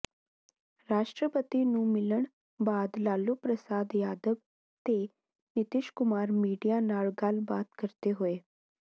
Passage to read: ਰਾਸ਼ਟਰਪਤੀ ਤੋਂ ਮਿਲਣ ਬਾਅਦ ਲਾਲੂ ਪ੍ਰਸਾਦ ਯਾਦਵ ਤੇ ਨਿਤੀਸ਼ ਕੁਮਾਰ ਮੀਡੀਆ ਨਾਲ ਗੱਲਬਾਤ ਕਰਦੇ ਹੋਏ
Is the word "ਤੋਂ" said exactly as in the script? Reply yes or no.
no